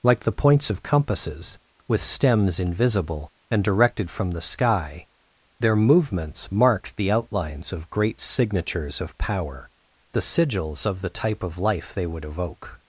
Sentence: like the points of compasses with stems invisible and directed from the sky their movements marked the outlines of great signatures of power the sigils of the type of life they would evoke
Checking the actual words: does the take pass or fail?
pass